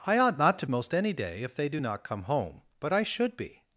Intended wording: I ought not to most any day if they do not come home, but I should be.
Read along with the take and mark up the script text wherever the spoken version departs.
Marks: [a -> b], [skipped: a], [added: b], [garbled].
I ought not to most any day if they do not come home, but I should be.